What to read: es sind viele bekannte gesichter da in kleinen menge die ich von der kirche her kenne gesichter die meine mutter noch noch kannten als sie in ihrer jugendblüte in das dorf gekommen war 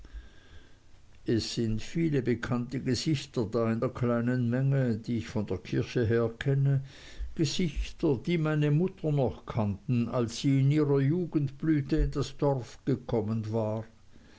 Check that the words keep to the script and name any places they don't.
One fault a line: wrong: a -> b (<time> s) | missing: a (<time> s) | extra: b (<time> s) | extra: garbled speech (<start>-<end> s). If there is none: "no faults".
extra: der (3.8 s)
missing: noch (9.4 s)